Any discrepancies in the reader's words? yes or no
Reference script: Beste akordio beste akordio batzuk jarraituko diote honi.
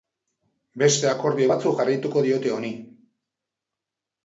yes